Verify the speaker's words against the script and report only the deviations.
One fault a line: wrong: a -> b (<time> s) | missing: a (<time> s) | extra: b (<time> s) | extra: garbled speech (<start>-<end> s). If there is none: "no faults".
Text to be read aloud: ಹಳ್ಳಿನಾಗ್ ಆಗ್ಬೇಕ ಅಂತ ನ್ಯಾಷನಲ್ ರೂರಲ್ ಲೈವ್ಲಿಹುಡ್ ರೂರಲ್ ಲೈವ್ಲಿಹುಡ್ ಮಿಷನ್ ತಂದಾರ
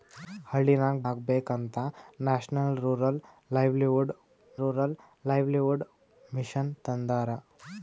no faults